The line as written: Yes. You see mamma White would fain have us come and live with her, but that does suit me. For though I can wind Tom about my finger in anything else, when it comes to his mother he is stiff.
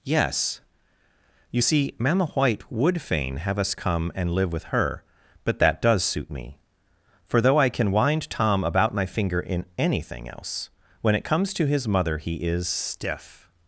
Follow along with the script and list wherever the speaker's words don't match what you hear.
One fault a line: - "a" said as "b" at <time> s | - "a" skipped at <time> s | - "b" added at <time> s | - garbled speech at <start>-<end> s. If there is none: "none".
none